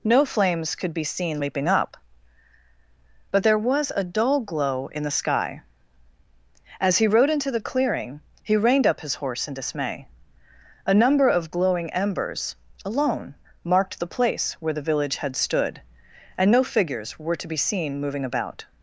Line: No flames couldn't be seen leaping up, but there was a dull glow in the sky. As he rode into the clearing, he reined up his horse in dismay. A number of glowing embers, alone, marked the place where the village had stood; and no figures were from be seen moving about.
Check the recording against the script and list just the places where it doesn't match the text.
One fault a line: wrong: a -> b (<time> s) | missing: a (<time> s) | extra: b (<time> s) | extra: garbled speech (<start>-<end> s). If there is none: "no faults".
wrong: couldn't -> could (0.7 s)
wrong: from -> to (17.4 s)